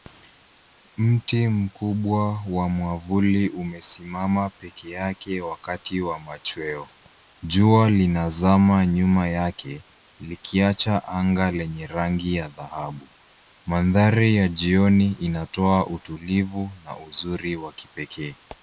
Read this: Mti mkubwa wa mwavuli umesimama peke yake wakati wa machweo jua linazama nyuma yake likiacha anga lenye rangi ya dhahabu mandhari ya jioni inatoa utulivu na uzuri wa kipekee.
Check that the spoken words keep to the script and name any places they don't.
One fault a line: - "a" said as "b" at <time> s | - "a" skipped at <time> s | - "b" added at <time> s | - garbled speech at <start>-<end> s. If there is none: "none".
none